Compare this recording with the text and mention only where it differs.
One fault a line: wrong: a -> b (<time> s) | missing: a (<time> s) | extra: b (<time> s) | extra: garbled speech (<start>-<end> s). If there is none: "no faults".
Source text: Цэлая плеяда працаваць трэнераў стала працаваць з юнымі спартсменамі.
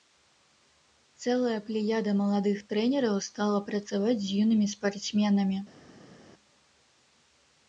wrong: працаваць -> маладых (2.2 s)